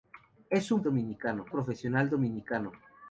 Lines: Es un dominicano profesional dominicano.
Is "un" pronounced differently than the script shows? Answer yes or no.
no